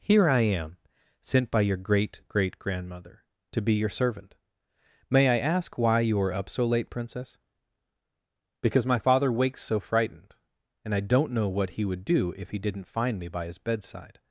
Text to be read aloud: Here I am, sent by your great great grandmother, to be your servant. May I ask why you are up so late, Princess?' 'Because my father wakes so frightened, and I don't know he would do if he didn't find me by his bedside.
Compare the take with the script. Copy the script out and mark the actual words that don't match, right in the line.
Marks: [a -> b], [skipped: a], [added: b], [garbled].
Here I am, sent by your great great grandmother, to be your servant. May I ask why you are up so late, Princess?' 'Because my father wakes so frightened, and I don't know [added: what] he would do if he didn't find me by his bedside.